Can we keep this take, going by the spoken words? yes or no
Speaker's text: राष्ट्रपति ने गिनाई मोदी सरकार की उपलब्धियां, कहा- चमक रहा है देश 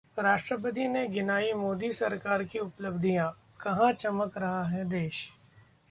yes